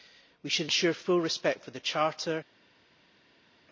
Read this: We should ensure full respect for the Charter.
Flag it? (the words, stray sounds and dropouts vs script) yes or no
no